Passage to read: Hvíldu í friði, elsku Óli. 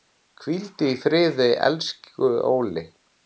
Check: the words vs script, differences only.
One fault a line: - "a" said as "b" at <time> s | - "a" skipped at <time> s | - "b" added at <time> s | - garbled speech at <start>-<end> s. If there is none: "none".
none